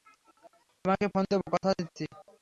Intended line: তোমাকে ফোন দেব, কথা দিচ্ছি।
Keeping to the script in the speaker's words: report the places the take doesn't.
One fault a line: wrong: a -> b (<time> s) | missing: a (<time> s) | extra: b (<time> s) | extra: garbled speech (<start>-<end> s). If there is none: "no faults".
no faults